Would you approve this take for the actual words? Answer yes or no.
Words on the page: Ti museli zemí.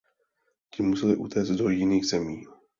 no